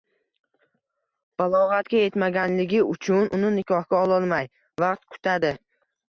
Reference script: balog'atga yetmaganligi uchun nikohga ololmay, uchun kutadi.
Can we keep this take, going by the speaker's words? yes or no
no